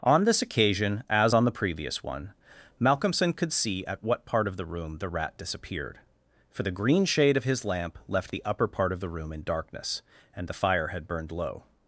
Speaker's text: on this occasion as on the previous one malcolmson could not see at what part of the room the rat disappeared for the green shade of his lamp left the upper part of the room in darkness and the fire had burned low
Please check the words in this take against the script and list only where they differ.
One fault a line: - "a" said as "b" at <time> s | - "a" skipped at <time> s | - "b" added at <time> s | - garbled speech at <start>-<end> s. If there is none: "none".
- "not" skipped at 3.5 s